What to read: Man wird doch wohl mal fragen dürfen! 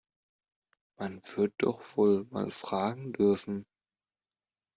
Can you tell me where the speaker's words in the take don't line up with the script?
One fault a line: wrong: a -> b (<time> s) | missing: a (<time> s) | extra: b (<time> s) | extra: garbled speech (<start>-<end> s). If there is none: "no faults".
no faults